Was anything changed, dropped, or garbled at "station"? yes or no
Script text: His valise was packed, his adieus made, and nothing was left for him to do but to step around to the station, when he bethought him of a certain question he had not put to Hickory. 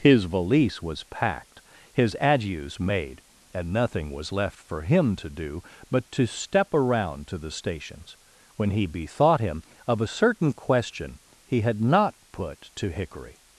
yes